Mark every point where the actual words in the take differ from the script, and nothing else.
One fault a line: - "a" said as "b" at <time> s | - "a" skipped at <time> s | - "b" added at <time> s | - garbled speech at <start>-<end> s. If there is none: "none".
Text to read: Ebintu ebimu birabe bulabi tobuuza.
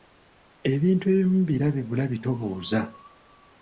none